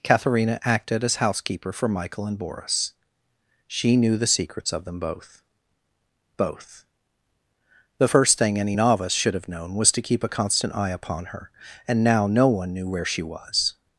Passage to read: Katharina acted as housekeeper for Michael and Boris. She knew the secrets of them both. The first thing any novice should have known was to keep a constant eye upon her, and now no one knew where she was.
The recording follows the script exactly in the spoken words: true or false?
false